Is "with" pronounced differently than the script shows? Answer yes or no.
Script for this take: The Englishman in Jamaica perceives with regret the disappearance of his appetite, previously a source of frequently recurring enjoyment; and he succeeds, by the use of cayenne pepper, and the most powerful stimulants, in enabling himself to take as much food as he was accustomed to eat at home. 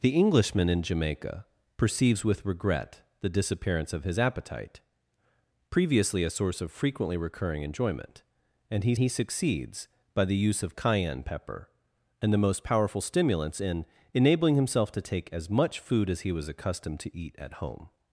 no